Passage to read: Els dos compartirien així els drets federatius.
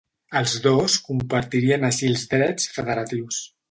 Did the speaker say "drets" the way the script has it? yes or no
yes